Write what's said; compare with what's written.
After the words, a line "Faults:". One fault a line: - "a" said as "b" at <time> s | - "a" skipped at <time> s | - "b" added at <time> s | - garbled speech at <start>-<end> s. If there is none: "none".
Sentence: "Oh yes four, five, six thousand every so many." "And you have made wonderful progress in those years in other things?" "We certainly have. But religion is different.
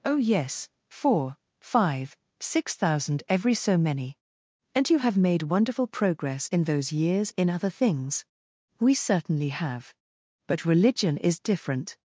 "Oh yes four, five, six thousand every so many." "And you have made wonderful progress in those years in other things?" "We certainly have. But religion is different.
Faults:
none